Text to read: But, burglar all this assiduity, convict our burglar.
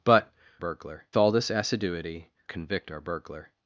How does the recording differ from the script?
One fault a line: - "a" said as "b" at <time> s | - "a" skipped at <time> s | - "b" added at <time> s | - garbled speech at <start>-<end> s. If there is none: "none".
none